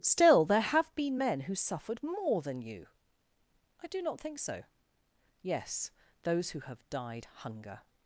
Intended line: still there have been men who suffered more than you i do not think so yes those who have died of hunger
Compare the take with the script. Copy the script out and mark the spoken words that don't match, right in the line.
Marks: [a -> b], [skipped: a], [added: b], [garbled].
still there have been men who suffered more than you i do not think so yes those who have died [skipped: of] hunger